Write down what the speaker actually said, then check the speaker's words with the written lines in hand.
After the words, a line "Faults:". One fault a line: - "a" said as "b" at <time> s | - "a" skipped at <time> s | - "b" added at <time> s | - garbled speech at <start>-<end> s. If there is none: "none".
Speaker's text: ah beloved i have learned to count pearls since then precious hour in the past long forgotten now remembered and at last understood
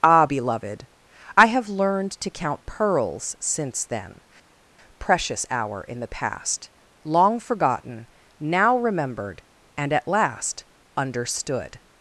ah beloved i have learned to count pearls since then precious hour in the past long forgotten now remembered and at last understood
Faults:
none